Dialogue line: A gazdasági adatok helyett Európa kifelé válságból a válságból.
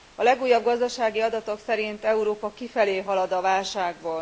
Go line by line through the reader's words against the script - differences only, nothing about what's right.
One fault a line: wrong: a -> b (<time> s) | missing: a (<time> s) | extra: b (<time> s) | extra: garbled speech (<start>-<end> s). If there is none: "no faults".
extra: legújabb (0.2 s)
wrong: helyett -> szerint (1.6 s)
wrong: válságból -> halad (3.0 s)